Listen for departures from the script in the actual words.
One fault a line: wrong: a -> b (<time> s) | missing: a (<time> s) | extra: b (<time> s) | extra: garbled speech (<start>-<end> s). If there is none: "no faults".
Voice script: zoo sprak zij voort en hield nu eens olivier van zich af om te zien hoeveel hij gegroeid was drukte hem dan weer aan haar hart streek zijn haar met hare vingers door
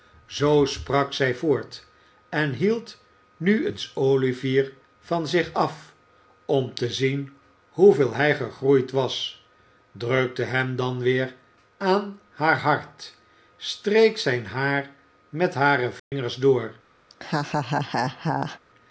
no faults